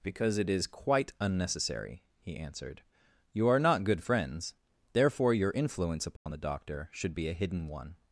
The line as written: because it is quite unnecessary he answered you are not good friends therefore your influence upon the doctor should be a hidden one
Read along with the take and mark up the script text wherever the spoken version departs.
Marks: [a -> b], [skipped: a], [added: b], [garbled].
because it is quite unnecessary he answered you are not good friends therefore your influence upon the doctor should be a hidden one